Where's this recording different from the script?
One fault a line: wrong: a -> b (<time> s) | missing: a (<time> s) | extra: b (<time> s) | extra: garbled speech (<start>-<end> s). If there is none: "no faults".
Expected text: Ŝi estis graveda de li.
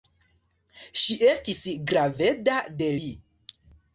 no faults